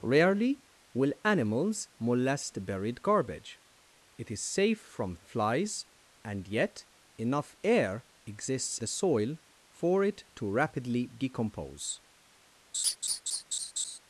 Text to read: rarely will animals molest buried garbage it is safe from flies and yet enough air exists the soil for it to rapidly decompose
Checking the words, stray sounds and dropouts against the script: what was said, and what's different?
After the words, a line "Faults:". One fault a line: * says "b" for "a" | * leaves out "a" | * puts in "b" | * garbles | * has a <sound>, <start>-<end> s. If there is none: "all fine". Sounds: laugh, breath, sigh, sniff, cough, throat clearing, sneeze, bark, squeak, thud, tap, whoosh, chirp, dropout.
rarely will animals molest buried garbage it is safe from flies and yet enough air exists the soil for it to rapidly decompose
Faults:
* has a laugh, 12.7-14.0 s